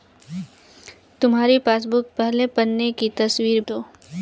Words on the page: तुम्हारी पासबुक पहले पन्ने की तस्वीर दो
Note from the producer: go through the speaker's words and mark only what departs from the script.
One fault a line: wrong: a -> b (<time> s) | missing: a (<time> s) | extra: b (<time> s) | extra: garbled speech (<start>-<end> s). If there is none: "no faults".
no faults